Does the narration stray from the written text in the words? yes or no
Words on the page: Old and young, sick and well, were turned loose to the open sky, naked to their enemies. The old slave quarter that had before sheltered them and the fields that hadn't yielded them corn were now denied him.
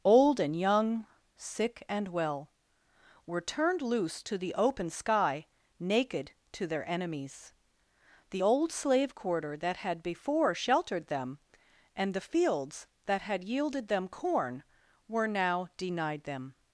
yes